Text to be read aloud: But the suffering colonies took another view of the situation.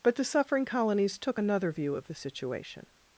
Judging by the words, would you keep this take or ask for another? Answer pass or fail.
pass